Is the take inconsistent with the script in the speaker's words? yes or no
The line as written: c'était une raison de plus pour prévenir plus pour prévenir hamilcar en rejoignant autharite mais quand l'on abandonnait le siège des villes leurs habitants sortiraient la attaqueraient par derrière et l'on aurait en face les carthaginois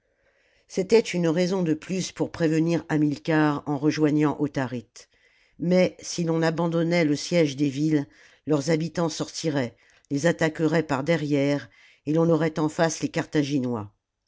yes